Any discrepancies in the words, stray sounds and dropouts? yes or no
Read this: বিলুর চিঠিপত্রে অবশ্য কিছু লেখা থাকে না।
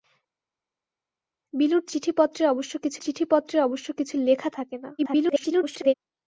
yes